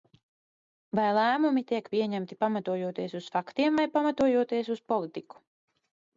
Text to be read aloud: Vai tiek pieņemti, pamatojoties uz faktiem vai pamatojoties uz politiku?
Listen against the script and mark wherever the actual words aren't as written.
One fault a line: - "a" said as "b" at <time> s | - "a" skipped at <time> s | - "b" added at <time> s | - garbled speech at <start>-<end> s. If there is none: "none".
- "lēmumi" added at 1.2 s